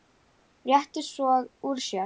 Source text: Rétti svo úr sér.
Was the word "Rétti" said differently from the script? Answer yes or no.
no